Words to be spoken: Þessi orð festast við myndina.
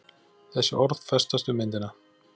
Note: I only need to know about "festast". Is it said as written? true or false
true